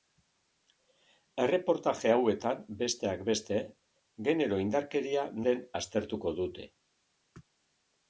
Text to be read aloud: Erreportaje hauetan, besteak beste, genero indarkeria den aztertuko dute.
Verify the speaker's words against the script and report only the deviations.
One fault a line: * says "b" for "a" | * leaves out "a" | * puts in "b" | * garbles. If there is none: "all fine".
all fine